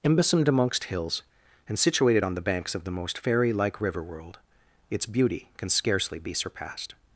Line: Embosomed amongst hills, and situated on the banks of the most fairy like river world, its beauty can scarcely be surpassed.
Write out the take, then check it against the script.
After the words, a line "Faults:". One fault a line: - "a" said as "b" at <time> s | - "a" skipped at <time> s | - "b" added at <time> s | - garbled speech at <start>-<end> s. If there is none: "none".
Embosomed amongst hills, and situated on the banks of the most fairy like river world, its beauty can scarcely be surpassed.
Faults:
none